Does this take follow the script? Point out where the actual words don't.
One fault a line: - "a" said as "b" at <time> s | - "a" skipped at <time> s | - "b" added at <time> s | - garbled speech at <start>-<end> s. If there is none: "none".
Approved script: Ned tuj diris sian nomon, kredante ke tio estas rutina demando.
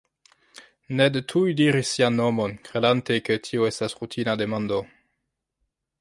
none